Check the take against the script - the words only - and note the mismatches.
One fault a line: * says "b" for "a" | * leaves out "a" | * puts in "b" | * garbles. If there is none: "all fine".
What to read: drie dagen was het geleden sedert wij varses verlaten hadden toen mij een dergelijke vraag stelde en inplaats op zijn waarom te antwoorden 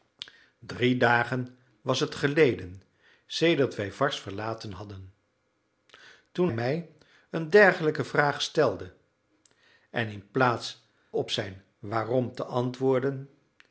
all fine